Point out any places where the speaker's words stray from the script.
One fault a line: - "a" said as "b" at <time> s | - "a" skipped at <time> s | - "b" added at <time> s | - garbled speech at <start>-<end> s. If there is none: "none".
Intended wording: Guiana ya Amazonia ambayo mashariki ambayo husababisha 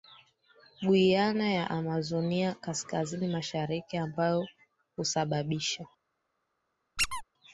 - "ambayo" said as "kaskazini" at 2.5 s